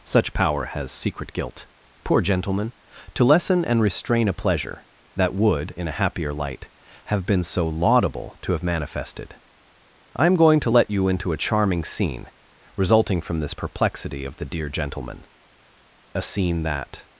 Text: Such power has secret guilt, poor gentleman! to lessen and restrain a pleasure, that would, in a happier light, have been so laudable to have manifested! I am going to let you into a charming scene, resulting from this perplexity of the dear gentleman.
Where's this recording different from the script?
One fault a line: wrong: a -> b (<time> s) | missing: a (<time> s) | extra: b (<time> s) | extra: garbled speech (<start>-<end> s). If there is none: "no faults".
extra: A scene that (16.1 s)